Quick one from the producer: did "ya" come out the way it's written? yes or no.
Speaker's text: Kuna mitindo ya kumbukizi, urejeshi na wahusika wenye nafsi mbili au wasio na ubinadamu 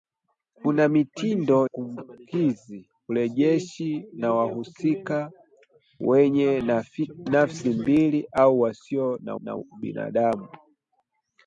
no